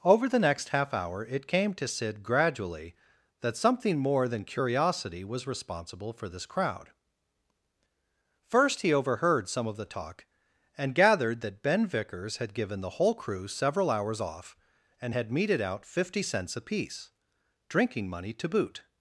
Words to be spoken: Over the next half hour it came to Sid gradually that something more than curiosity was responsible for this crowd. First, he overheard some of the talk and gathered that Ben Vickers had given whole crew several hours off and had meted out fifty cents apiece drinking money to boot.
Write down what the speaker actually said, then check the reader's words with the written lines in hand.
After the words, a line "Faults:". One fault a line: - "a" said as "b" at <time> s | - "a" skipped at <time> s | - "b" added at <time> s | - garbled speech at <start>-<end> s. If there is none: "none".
Over the next half hour it came to Sid gradually that something more than curiosity was responsible for this crowd. First, he overheard some of the talk and gathered that Ben Vickers had given the whole crew several hours off and had meted out fifty cents apiece drinking money to boot.
Faults:
- "the" added at 12.8 s